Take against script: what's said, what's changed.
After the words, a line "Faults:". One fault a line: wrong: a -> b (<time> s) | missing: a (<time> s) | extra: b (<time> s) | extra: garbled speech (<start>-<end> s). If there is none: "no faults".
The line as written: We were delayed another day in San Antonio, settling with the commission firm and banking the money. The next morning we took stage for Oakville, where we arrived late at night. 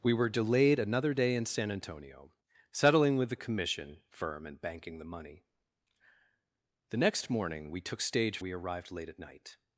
We were delayed another day in San Antonio, settling with the commission firm and banking the money. The next morning we took stage we arrived late at night.
Faults:
missing: for Oakville where (8.4 s)